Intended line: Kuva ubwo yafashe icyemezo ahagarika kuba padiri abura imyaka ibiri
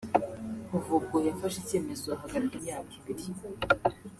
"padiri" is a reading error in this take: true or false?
true